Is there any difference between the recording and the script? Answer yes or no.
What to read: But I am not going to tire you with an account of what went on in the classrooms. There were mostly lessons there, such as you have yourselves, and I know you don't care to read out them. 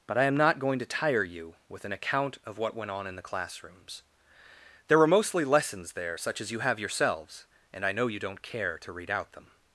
no